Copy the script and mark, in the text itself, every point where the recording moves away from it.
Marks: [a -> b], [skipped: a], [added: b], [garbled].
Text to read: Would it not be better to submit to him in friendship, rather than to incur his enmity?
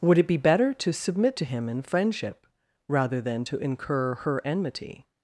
Would it [skipped: not] be better to submit to him in friendship, rather than to incur [his -> her] enmity?